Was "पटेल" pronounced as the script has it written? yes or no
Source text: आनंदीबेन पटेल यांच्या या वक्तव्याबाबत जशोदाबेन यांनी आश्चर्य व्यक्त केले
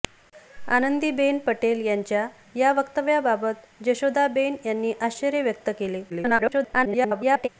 yes